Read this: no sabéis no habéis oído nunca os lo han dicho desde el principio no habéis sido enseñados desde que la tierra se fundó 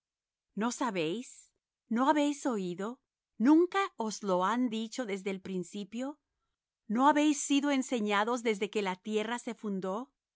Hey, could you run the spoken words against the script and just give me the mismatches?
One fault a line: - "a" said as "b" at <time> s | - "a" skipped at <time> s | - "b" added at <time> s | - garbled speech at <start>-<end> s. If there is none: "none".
none